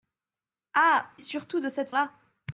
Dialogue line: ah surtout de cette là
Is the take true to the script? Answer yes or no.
yes